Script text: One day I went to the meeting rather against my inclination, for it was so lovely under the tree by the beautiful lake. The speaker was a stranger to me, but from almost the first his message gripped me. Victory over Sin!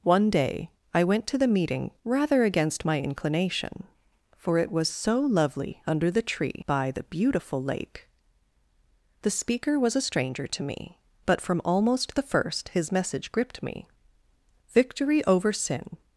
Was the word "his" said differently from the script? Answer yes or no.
no